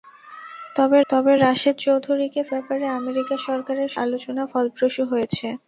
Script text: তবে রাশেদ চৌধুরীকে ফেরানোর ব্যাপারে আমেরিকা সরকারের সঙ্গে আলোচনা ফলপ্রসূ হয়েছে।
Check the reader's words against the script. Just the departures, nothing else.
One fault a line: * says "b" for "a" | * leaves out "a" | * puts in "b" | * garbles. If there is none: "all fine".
* puts in "তবে"
* leaves out "ফেরানোর"
* leaves out "সঙ্গে"